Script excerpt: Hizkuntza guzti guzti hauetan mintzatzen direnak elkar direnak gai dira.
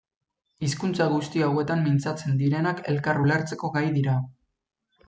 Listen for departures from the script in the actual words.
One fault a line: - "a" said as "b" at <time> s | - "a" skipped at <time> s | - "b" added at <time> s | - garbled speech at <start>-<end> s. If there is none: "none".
- "guzti" skipped at 1.4 s
- "direnak" said as "ulertzeko" at 3.3 s